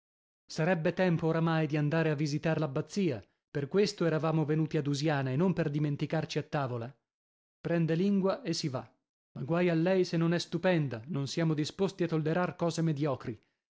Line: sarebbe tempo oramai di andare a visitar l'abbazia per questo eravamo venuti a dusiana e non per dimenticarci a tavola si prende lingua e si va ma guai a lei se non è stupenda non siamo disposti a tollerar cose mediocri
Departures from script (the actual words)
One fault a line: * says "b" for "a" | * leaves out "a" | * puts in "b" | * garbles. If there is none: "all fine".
* leaves out "si"